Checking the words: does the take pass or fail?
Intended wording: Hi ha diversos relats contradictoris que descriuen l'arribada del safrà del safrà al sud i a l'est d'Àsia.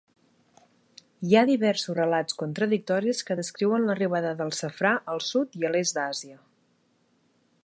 fail